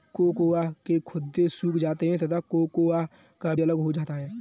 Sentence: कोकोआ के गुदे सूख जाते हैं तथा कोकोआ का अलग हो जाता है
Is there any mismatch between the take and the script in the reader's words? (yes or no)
no